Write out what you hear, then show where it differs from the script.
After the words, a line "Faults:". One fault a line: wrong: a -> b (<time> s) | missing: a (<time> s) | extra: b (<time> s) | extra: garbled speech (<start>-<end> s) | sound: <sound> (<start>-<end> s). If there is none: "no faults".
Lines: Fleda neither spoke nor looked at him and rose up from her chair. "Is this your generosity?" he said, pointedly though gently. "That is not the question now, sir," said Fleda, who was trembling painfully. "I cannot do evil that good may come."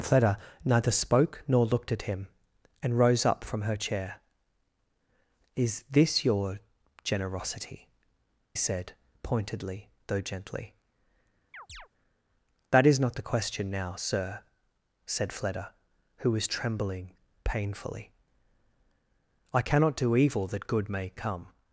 Fleda neither spoke nor looked at him and rose up from her chair. "Is this your generosity?" said, pointedly though gently. "That is not the question now, sir," said Fleda, who was trembling painfully. "I cannot do evil that good may come."
Faults:
missing: he (7.9 s)
sound: chirp (11.5-11.9 s)